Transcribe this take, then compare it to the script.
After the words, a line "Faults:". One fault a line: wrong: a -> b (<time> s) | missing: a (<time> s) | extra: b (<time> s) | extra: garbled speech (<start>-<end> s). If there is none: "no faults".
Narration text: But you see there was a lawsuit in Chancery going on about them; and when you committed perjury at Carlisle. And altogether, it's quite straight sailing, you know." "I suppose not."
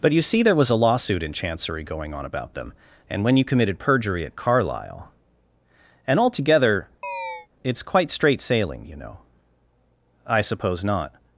But you see there was a lawsuit in Chancery going on about them; and when you committed perjury at Carlisle. And altogether, it's quite straight sailing, you know." "I suppose not."
Faults:
no faults